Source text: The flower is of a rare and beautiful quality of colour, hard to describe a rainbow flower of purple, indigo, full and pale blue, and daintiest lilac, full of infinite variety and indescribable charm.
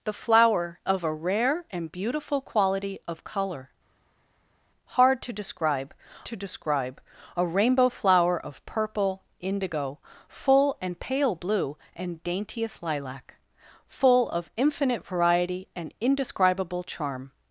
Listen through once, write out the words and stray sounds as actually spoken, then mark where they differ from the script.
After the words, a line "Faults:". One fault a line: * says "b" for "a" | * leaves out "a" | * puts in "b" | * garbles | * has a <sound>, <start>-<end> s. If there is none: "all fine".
The flower of a rare and beautiful quality of colour, hard to describe to describe a rainbow flower of purple, indigo, full and pale blue, and daintiest lilac, full of infinite variety and indescribable charm.
Faults:
* leaves out "is"
* puts in "to describe"